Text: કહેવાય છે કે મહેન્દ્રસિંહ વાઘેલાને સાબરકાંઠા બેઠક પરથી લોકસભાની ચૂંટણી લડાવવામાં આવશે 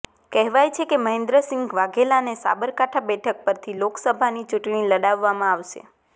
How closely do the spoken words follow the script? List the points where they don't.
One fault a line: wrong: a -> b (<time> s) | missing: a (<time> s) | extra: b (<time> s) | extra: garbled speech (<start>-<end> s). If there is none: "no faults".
no faults